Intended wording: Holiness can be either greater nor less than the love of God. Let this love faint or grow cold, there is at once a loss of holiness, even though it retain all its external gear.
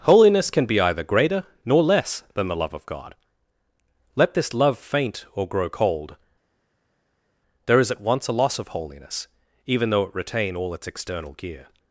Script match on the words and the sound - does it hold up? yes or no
yes